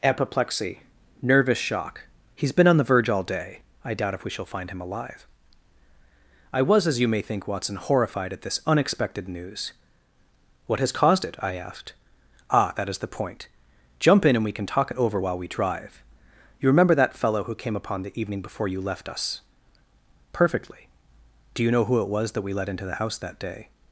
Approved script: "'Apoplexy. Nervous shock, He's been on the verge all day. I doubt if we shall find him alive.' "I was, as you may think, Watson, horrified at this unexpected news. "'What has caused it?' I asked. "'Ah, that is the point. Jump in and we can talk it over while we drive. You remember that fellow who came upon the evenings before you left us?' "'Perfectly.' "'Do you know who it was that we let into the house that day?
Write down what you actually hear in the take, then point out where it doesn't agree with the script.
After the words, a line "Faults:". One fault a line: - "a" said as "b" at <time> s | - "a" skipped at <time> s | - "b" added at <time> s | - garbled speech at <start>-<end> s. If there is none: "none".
"'Apoplexy. Nervous shock, He's been on the verge all day. I doubt if we shall find him alive.' "I was, as you may think, Watson, horrified at this unexpected news. "'What has caused it?' I asked. "'Ah, that is the point. Jump in and we can talk it over while we drive. You remember that fellow who came upon the evening before you left us?' "'Perfectly.' "'Do you know who it was that we let into the house that day?
Faults:
- "evenings" said as "evening" at 18.2 s